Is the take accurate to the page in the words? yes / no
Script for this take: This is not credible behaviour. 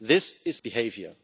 no